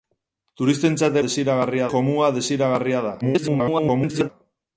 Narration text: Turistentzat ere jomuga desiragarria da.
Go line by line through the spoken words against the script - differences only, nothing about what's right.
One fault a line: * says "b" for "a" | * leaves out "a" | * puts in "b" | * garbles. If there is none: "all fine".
* says "desiragarria" for "ere"
* garbles